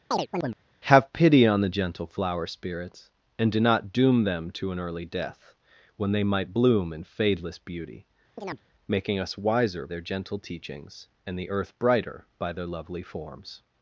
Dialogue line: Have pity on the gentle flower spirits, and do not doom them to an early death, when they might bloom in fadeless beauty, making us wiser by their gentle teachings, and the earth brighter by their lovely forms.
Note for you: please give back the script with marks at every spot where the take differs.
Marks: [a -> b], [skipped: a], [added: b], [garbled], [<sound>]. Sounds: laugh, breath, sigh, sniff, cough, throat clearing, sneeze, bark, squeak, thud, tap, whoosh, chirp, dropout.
[chirp] Have pity on the gentle flower spirits, and do not doom them to an early death, when they might bloom in fadeless beauty, [chirp] making us wiser [skipped: by] their gentle teachings, and the earth brighter by their lovely forms.